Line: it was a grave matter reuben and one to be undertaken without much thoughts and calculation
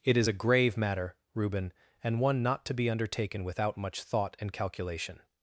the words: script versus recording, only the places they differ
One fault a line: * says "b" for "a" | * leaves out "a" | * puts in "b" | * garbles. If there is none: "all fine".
* says "is" for "was"
* puts in "not"
* says "thought" for "thoughts"